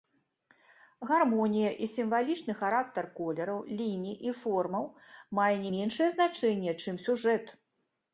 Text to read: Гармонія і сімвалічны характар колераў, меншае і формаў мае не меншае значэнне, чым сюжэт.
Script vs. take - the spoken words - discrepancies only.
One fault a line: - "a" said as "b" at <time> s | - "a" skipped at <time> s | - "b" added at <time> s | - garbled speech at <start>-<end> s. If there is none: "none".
- "меншае" said as "ліній" at 3.8 s